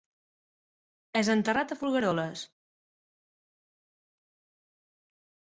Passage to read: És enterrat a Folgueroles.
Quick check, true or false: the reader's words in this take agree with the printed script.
true